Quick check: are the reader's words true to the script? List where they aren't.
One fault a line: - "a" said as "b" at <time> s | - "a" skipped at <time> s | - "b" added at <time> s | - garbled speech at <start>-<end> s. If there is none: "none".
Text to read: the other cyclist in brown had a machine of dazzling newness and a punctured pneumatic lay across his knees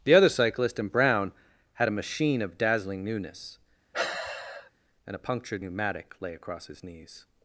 none